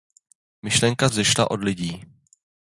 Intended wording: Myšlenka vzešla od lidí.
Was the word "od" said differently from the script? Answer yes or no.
no